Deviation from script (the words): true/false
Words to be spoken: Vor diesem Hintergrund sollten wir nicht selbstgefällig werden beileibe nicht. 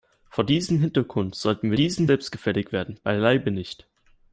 true